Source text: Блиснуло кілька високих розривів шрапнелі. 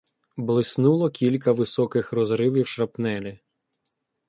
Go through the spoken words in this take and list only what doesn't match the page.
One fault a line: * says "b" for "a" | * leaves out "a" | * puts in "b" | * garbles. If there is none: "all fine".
all fine